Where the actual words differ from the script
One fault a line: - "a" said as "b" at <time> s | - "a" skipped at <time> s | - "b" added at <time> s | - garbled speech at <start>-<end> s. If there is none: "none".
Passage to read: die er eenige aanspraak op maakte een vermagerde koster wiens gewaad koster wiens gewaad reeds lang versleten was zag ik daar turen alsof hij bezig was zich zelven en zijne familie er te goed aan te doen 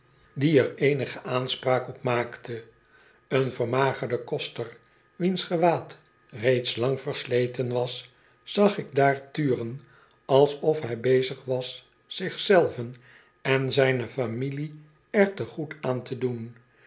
- "koster wiens gewaad" skipped at 6.0 s